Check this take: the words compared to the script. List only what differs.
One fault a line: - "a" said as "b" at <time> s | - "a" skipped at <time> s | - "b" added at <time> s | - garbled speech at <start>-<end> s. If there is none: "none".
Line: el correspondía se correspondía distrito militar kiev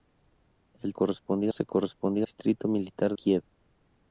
none